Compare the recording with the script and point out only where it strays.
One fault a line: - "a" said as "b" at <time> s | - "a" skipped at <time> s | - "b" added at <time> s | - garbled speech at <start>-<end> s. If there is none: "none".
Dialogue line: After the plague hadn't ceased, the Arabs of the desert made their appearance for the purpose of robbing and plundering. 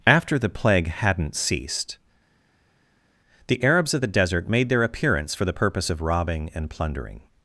none